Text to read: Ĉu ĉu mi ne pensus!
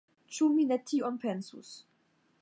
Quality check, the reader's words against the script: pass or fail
fail